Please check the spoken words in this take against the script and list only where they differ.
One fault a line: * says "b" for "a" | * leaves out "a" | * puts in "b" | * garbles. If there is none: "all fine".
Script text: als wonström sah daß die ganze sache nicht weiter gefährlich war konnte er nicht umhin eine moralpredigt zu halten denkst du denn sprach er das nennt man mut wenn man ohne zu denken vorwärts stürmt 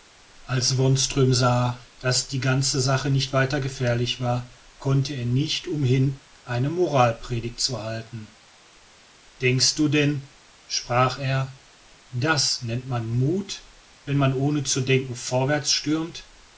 all fine